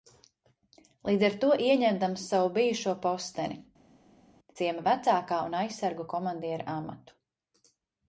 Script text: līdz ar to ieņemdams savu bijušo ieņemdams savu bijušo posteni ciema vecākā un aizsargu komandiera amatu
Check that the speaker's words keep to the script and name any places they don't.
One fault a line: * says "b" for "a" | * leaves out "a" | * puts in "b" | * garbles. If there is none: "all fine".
* leaves out "ieņemdams savu bijušo"